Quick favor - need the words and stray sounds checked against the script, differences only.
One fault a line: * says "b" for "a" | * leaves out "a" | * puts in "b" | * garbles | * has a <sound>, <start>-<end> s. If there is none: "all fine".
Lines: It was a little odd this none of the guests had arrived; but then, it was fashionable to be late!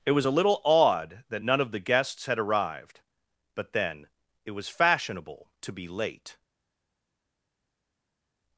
* says "that" for "this"